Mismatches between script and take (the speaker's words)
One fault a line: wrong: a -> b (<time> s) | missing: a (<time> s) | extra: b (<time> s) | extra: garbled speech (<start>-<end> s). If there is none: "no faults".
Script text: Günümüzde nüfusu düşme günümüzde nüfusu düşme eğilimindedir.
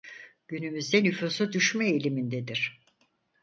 missing: günümüzde nüfusu düşme (1.9 s)